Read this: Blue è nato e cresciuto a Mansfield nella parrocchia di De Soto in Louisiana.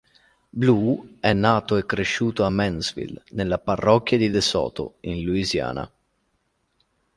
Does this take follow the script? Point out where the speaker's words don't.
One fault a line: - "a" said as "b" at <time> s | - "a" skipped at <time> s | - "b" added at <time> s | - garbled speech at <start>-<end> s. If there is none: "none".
none